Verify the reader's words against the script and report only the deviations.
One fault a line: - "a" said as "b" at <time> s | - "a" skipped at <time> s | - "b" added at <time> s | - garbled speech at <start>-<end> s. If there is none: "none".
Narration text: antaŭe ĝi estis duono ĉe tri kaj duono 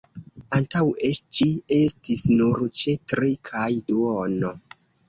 - "duono" said as "nur" at 2.4 s